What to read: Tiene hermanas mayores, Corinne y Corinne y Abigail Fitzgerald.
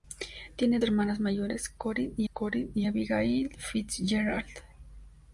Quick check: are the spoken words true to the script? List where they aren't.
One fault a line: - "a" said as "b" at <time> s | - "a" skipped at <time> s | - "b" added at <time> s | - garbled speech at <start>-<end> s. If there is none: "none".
none